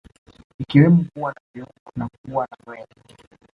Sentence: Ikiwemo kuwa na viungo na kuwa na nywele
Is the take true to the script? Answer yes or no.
yes